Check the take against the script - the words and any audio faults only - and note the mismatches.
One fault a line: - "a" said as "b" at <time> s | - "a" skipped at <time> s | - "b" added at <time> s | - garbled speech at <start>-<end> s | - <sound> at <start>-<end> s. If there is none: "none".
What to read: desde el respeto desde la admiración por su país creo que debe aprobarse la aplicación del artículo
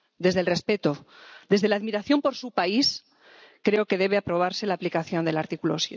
none